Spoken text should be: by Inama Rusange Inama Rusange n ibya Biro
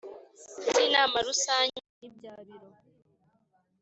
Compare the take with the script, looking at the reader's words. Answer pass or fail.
fail